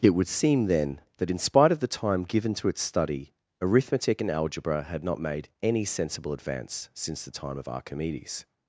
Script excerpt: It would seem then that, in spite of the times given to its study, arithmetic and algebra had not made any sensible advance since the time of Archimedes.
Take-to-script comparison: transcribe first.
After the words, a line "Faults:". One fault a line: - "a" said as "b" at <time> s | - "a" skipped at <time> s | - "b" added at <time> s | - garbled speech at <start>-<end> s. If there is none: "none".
It would seem then that, in spite of the time given to its study, arithmetic and algebra had not made any sensible advance since the time of Archimedes.
Faults:
- "times" said as "time" at 1.9 s